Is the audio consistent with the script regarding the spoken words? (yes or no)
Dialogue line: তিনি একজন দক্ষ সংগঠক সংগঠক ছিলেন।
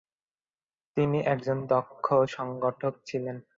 no